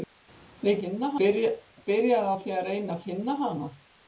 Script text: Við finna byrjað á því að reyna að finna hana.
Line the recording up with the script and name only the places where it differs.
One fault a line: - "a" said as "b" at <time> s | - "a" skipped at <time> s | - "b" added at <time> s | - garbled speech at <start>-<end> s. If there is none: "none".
none